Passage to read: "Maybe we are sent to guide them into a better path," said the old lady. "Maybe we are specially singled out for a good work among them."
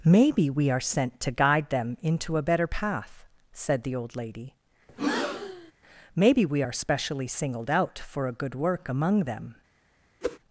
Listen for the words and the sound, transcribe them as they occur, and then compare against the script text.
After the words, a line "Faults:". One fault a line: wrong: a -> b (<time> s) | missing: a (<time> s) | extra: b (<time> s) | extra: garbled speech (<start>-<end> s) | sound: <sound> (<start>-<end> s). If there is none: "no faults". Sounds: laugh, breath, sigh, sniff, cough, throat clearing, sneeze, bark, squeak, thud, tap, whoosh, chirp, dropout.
"Maybe we are sent to guide them into a better path," said the old lady. "Maybe we are specially singled out for a good work among them."
Faults:
sound: breath (4.9-5.7 s)
sound: whoosh (10.2-10.4 s)